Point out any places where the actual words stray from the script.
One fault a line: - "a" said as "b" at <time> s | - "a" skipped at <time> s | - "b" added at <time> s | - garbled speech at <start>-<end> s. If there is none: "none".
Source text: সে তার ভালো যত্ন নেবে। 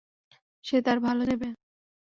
- "যত্ন" skipped at 1.2 s